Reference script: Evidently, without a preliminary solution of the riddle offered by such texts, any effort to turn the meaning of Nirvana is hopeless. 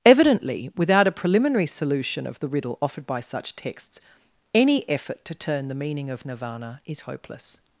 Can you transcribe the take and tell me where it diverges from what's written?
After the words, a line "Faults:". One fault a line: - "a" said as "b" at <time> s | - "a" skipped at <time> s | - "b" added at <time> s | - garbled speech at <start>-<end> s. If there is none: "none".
Evidently, without a preliminary solution of the riddle offered by such texts, any effort to turn the meaning of Nirvana is hopeless.
Faults:
none